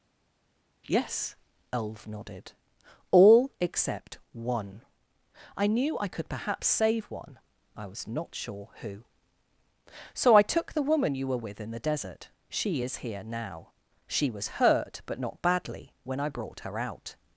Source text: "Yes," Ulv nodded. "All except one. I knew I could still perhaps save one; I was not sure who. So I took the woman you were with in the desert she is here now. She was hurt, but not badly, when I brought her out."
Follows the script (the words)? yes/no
no